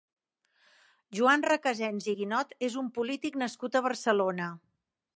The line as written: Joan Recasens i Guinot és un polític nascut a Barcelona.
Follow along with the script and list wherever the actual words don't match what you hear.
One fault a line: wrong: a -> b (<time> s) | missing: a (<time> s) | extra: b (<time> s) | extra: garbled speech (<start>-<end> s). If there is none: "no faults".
no faults